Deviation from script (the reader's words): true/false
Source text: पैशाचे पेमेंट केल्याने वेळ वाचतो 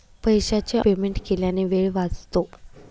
false